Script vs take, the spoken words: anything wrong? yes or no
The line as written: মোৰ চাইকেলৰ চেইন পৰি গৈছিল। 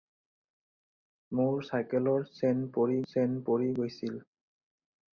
yes